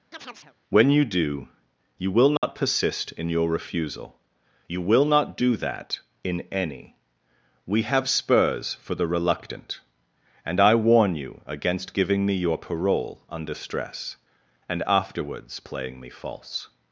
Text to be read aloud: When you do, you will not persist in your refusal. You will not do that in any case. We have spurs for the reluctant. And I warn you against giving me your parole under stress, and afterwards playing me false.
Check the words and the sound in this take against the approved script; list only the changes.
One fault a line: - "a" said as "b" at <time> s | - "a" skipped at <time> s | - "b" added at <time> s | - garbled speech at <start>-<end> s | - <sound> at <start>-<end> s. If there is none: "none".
- chirp at 0.1-0.5 s
- dropout at 2.4-2.4 s
- "case" skipped at 7.0 s